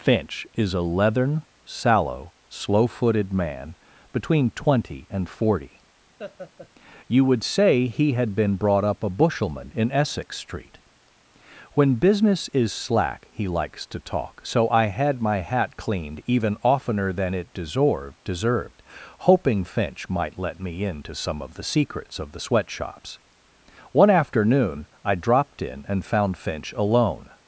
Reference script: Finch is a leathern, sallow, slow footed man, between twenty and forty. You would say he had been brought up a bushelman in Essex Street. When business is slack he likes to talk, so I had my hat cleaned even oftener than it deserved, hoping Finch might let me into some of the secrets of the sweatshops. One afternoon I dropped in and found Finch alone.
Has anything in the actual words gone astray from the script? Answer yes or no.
yes